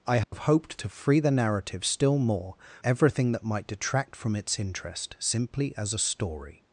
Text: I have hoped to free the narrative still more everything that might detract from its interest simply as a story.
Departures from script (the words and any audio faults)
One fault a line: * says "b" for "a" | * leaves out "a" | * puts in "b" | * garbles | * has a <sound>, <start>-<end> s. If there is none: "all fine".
* has a dropout, 0.2-0.3 s